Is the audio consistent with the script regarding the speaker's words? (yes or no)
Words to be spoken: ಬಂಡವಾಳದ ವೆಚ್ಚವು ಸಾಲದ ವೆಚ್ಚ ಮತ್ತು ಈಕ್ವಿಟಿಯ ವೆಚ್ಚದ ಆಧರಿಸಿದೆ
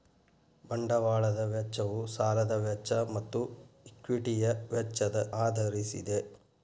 yes